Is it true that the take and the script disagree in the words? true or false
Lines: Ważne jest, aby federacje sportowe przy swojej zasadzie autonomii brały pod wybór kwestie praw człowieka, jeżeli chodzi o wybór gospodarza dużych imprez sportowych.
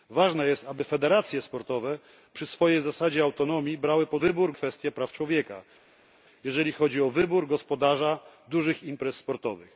false